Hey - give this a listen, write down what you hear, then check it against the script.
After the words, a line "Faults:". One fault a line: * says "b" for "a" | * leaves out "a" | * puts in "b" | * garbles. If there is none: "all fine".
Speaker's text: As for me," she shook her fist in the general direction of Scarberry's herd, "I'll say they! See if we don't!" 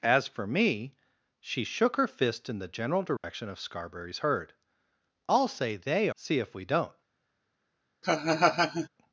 As for me," she shook her fist in the general direction of Scarberry's herd, "I'll say they! See if we don't!"
Faults:
all fine